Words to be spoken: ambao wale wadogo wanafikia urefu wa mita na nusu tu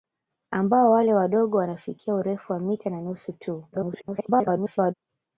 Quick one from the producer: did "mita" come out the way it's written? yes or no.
yes